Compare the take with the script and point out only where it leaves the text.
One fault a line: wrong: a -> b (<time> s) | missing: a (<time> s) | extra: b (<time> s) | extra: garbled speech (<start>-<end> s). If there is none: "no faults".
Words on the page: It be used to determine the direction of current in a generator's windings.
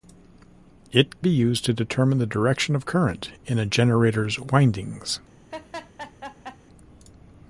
no faults